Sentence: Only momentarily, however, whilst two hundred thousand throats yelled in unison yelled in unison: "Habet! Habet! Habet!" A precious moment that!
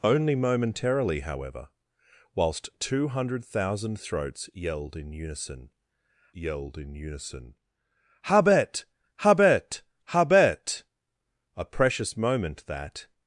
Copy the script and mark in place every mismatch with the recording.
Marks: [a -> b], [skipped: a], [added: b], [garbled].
Only momentarily, however, whilst two hundred thousand throats yelled in unison yelled in unison: "Habet! Habet! Habet!" A precious moment that!